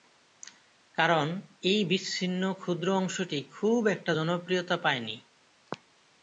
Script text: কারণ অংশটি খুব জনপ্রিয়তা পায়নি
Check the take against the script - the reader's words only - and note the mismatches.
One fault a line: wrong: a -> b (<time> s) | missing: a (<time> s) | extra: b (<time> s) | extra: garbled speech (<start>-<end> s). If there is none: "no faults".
extra: এই বিচ্ছিন্ন ক্ষুদ্র (1.6 s)
extra: একটা (3.9 s)